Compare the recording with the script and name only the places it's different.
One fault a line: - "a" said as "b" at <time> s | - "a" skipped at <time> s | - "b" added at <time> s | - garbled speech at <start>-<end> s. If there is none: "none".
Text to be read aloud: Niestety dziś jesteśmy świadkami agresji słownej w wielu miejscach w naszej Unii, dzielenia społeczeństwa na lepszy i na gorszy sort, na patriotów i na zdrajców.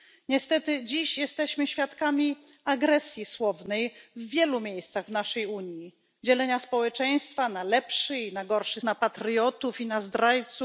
- "sort" skipped at 8.8 s